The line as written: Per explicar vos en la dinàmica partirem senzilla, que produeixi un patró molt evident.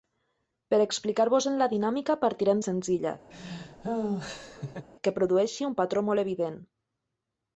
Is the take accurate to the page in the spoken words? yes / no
yes